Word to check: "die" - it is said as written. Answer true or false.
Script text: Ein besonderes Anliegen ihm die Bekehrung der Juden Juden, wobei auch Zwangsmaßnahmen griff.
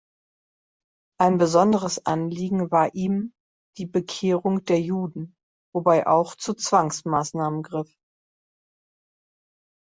true